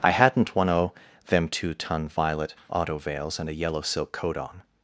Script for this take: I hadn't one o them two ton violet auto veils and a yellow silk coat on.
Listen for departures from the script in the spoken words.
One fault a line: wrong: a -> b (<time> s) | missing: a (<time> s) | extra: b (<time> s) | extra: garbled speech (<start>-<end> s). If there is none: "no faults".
no faults